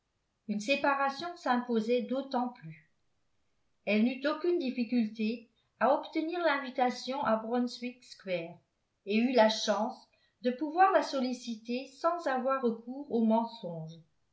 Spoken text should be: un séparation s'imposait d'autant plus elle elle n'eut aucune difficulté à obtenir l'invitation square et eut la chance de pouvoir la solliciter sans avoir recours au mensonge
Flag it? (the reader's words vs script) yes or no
yes